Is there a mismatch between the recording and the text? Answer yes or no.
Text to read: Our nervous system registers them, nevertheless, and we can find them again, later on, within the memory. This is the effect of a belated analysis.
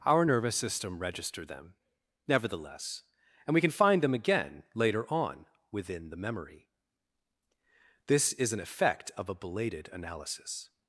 yes